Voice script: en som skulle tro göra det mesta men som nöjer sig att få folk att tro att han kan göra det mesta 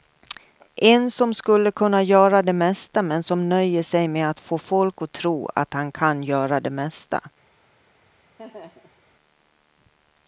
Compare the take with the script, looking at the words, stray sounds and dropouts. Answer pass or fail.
fail